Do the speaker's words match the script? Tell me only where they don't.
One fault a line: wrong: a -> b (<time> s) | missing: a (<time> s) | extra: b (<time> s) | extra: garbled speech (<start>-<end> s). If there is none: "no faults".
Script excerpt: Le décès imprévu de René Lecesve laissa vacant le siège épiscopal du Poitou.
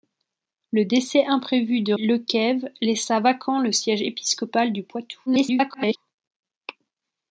missing: René (1.9 s)
extra: garbled speech (5.3-6.0 s)